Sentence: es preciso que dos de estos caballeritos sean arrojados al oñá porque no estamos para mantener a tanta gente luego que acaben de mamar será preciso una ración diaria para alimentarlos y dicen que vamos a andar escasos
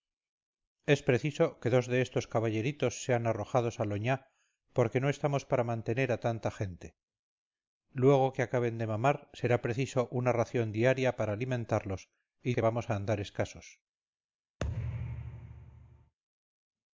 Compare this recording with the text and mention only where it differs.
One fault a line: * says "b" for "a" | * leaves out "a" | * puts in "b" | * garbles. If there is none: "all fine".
* leaves out "dicen"